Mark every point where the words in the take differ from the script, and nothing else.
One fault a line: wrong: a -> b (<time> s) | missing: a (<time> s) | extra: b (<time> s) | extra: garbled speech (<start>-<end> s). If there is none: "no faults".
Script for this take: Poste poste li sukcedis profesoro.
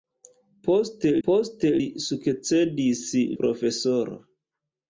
no faults